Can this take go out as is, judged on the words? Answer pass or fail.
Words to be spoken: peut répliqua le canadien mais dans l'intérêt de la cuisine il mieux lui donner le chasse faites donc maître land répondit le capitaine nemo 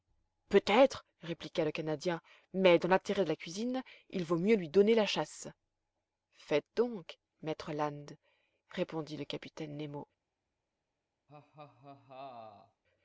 fail